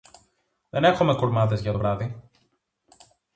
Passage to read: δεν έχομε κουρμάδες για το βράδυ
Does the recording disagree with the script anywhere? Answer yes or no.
no